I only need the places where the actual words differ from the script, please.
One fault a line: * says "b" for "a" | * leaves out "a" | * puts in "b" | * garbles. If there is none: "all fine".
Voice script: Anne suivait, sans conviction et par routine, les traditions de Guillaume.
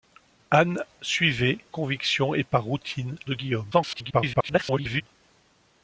* leaves out "sans"
* leaves out "les traditions"
* garbles